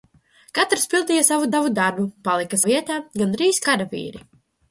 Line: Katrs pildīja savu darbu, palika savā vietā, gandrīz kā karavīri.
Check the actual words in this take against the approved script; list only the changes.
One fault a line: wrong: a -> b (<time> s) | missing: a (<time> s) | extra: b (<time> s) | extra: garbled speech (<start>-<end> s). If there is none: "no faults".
extra: savu (1.5 s)
missing: savā (2.6 s)
missing: kā (3.6 s)